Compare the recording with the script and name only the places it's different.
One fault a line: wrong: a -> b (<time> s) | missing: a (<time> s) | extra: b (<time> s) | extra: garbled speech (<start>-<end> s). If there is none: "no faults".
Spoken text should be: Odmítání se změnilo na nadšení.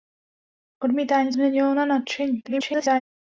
missing: se (1.3 s)
extra: garbled speech (2.4-3.0 s)